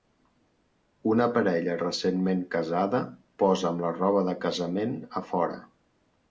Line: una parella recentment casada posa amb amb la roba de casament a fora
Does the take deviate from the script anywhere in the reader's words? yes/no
yes